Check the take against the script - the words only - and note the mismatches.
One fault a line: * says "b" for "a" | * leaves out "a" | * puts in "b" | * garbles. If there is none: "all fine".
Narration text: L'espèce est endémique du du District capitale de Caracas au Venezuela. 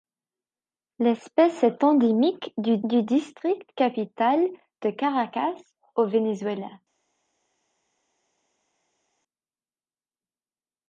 all fine